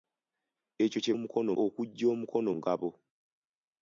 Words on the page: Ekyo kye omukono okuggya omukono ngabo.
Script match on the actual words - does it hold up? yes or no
yes